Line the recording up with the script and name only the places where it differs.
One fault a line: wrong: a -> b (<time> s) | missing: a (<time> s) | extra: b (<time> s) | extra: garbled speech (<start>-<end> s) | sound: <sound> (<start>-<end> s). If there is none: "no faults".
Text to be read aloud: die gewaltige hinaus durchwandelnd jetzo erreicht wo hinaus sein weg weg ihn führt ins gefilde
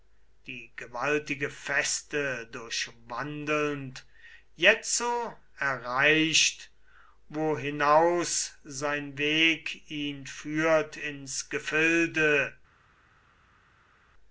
wrong: hinaus -> feste (1.5 s)
missing: weg (9.9 s)